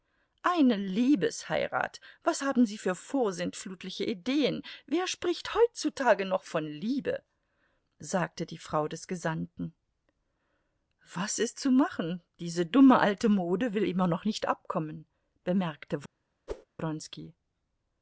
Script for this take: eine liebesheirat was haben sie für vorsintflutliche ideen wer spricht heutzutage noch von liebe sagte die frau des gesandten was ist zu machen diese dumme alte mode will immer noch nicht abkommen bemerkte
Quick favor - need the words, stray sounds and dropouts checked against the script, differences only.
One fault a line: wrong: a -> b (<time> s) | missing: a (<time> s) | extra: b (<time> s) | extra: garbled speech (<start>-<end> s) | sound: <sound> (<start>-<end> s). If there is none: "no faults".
sound: whoosh (16.5-16.7 s)